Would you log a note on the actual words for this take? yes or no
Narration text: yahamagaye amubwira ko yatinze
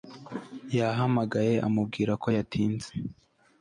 no